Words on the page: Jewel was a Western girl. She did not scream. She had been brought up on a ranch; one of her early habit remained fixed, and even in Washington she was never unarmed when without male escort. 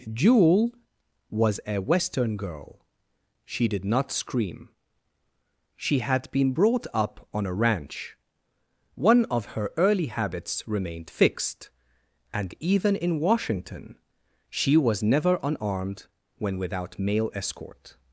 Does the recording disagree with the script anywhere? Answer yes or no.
yes